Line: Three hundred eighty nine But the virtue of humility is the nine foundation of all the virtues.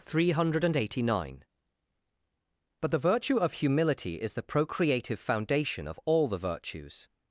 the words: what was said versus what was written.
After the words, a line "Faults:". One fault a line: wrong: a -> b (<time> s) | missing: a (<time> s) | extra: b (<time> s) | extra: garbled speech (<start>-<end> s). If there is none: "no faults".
Three hundred eighty nine But the virtue of humility is the procreative foundation of all the virtues.
Faults:
wrong: nine -> procreative (4.4 s)